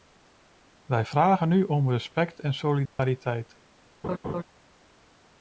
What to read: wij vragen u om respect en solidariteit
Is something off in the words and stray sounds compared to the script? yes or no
yes